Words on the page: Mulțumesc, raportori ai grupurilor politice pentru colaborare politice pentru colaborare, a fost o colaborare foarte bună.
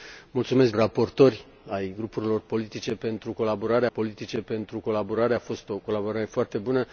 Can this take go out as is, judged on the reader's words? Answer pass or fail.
pass